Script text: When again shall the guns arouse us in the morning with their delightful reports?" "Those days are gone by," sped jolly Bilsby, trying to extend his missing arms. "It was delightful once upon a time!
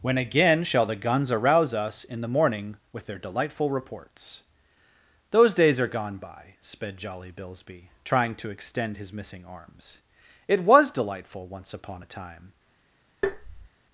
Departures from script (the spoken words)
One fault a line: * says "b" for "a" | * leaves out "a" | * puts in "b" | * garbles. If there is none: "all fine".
all fine